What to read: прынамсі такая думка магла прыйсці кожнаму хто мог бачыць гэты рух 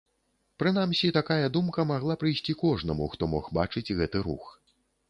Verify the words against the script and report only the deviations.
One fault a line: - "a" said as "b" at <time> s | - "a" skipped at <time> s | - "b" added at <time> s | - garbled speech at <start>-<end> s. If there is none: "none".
none